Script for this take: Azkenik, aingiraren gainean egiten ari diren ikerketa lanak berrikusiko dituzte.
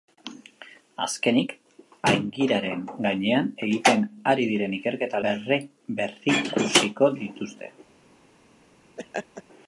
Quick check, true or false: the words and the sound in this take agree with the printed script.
false